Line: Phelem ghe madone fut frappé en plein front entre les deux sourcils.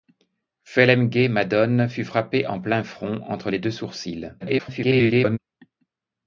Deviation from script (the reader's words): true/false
true